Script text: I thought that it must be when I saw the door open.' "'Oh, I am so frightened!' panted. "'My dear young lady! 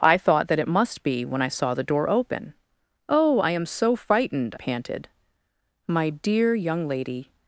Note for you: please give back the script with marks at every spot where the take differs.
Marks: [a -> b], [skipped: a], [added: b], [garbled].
I thought that it must be when I saw the door open.' "'Oh, I am so frightened!' panted. "'My dear young lady!